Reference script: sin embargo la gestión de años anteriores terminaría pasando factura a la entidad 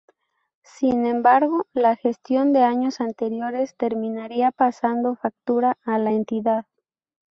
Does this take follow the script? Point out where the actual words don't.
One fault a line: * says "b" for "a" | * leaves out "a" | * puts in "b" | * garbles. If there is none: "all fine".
all fine